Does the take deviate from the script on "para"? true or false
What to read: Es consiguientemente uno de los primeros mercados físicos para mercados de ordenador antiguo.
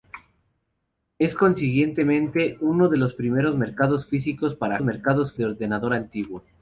false